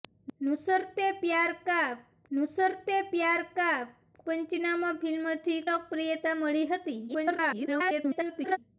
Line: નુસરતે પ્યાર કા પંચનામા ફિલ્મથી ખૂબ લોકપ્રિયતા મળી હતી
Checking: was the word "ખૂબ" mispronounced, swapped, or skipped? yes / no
yes